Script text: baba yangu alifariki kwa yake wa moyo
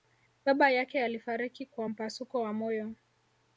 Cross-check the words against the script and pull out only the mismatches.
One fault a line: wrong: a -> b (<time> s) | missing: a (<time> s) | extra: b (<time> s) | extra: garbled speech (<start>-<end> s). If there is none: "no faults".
wrong: yangu -> yake (0.7 s)
wrong: yake -> mpasuko (1.9 s)